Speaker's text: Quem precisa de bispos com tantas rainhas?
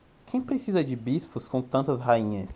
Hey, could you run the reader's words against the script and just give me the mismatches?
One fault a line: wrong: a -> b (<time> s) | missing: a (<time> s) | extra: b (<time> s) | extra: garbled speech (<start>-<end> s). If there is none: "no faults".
no faults